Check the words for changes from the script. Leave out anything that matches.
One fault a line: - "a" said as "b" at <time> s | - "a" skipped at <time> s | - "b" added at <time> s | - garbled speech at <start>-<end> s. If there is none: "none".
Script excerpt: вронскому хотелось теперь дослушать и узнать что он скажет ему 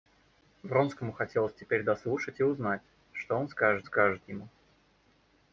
- "скажет" added at 3.8 s